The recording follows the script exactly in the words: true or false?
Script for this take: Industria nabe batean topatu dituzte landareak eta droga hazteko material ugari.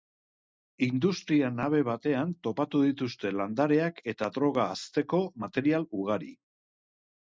true